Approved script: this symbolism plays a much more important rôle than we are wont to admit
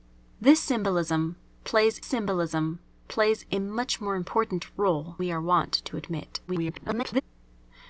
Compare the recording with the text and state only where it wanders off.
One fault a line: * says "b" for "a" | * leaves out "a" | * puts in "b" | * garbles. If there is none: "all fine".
* puts in "symbolism plays"
* leaves out "than"
* garbles